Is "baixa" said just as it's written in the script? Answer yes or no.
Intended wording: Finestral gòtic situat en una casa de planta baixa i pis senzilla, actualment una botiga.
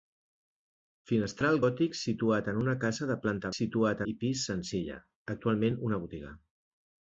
no